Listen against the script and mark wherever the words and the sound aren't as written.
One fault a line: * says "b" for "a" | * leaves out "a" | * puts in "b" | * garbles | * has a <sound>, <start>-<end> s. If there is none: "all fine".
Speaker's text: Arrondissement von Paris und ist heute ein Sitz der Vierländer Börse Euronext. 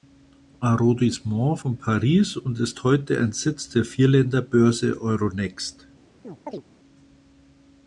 * has a chirp, 6.2-6.6 s